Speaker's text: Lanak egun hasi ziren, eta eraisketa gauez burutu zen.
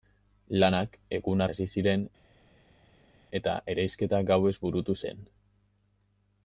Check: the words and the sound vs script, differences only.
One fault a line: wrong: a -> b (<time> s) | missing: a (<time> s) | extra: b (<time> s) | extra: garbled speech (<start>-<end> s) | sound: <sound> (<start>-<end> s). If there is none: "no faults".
no faults